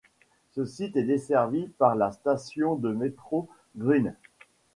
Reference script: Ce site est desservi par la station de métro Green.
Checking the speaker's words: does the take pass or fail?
pass